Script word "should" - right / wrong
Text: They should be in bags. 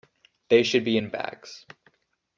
right